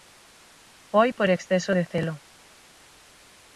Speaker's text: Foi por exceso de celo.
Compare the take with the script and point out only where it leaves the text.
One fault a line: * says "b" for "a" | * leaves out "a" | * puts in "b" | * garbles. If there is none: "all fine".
all fine